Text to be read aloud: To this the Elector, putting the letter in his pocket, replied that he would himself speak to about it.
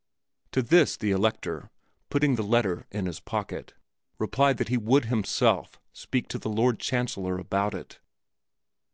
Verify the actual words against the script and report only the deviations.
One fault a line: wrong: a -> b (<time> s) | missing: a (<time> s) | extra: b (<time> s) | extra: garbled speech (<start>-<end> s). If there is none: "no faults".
extra: the Lord Chancellor (6.4 s)